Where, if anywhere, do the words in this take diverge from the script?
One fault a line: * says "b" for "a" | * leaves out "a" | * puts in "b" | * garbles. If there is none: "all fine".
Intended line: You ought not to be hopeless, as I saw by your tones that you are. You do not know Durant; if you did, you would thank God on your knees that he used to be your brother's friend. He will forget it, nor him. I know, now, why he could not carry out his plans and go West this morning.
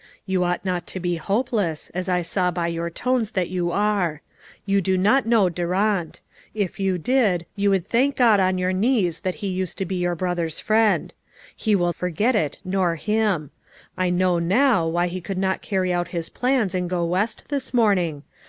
all fine